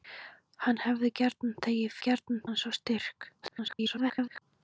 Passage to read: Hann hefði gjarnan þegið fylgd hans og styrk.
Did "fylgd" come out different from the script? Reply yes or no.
yes